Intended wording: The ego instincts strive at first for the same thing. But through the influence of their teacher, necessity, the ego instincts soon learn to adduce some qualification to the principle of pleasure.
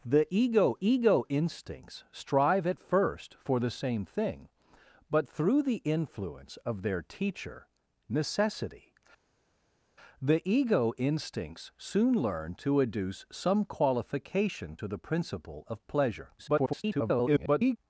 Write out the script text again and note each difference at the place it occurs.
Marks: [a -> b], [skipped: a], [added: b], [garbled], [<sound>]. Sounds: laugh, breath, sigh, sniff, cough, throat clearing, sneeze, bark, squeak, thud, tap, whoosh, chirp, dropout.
The ego [added: ego] instincts strive at first for the same thing. But through the influence of their teacher, necessity, the ego instincts soon learn to adduce some qualification to the principle of pleasure. [garbled]